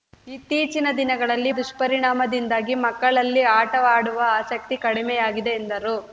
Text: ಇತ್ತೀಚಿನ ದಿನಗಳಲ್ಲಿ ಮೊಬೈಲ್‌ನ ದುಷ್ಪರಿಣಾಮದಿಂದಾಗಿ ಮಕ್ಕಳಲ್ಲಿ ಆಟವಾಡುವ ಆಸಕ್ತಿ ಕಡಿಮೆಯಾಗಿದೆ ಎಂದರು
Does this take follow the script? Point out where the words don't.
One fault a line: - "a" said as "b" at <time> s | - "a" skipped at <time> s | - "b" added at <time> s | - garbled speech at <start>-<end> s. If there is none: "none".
- "ಮೊಬೈಲ್‌ನ" skipped at 1.5 s